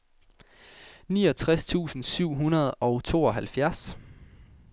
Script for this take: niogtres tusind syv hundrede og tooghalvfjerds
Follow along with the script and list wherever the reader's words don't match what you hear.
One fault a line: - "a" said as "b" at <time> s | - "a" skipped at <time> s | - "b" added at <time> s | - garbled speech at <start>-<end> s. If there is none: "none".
none